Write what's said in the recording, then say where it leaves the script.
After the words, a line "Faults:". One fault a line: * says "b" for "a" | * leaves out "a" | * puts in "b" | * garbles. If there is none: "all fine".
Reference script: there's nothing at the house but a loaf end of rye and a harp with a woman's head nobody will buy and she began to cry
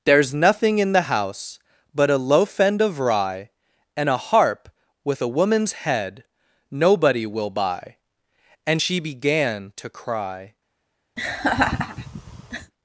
there's nothing in the house but a loaf end of rye and a harp with a woman's head nobody will buy and she began to cry
Faults:
* says "in" for "at"